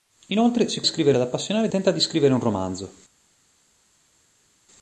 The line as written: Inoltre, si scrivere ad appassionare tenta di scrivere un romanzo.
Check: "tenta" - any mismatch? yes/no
no